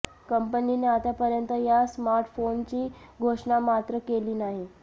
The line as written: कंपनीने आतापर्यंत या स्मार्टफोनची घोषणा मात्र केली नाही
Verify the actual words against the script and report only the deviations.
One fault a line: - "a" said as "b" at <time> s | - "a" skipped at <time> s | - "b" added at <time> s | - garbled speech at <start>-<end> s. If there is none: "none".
none